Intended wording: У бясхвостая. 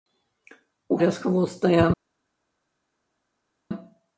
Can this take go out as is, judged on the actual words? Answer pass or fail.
pass